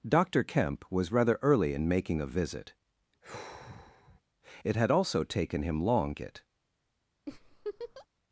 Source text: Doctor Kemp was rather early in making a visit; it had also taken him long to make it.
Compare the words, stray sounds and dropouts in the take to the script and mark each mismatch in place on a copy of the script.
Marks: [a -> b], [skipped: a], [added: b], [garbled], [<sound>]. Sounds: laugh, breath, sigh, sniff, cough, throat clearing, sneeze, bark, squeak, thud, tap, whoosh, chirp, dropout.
Doctor Kemp was rather early in making a visit; [sigh] it had also taken him long [skipped: to make] it. [laugh]